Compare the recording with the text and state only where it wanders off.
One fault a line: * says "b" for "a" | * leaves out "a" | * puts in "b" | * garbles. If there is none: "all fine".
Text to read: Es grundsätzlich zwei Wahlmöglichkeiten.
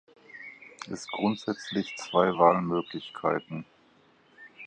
all fine